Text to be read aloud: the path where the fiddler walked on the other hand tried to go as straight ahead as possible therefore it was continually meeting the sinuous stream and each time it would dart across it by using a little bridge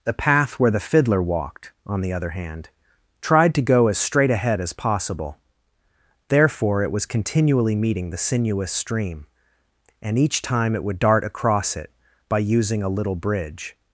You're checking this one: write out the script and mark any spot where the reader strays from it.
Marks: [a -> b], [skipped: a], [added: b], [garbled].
the path where the fiddler walked on the other hand tried to go as straight ahead as possible therefore it was continually meeting the sinuous stream and each time it would dart across it by using a little bridge